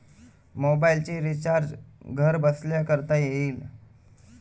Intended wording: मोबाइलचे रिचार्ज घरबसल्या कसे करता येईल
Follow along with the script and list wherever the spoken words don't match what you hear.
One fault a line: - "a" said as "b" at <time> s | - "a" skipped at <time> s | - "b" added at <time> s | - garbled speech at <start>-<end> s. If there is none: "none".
- "कसे" skipped at 2.8 s